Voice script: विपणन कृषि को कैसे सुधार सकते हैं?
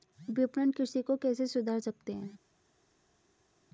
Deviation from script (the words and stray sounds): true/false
false